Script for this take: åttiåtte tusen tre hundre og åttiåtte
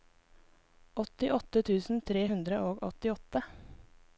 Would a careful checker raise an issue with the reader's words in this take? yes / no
no